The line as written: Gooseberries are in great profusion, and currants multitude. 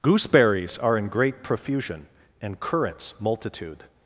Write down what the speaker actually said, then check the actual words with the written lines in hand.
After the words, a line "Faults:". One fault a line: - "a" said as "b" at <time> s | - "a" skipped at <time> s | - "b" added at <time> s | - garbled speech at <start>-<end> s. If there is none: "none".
Gooseberries are in great profusion, and currants multitude.
Faults:
none